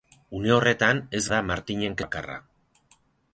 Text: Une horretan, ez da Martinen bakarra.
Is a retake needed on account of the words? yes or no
no